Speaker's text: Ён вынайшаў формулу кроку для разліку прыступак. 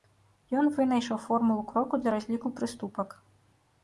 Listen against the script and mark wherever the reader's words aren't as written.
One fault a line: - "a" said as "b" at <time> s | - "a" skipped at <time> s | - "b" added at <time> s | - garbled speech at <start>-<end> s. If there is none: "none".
none